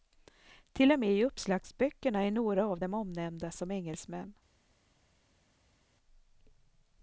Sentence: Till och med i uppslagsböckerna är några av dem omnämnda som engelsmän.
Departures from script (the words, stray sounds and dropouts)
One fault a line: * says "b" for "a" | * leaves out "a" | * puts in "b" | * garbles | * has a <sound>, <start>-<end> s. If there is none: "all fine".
all fine